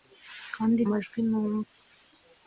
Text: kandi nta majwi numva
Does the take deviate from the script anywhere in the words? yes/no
yes